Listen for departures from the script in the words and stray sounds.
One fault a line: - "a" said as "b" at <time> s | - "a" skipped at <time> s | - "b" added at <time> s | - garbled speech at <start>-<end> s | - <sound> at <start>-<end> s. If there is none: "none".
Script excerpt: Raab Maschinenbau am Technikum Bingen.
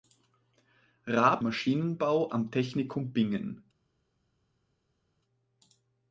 none